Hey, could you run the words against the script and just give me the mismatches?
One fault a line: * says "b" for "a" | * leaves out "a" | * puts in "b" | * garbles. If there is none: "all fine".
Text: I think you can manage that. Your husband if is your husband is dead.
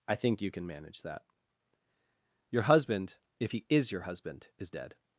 * puts in "he"